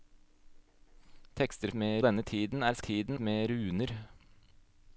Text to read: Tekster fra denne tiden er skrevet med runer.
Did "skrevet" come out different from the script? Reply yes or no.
yes